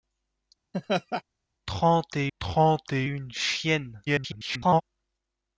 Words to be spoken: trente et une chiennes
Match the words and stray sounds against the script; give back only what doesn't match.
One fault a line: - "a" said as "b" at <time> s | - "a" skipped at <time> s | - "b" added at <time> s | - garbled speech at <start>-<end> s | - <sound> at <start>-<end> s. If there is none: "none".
- laugh at 0.7-1.2 s
- "trente et" added at 2.4 s
- garbled speech at 4.0-4.8 s